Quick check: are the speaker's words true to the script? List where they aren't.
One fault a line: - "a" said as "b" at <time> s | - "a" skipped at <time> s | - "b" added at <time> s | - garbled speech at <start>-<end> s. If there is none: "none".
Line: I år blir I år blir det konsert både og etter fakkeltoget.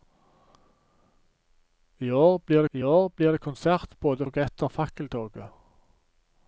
none